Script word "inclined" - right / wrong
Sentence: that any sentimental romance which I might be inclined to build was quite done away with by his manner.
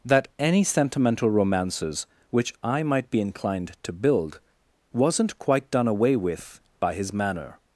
right